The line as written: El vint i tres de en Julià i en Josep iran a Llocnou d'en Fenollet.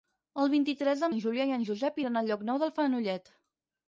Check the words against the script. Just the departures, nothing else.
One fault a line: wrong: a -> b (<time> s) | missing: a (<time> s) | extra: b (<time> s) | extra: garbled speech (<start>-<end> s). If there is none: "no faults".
no faults